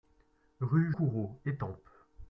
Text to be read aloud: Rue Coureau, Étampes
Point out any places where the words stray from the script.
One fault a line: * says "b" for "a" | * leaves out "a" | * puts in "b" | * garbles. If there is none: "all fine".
all fine